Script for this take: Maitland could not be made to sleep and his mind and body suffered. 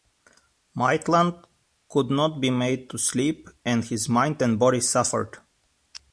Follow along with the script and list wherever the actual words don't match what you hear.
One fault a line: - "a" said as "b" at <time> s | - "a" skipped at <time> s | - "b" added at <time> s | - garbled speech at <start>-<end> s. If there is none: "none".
none